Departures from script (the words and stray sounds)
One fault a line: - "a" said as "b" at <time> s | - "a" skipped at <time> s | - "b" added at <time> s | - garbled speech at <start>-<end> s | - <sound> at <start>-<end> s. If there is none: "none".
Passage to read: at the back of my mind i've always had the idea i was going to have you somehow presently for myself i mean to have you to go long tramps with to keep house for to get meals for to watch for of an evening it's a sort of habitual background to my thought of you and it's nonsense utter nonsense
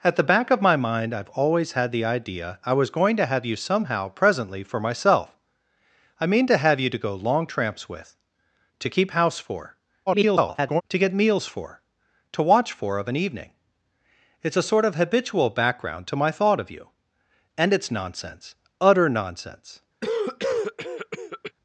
- garbled speech at 10.1-10.8 s
- cough at 20.0-21.5 s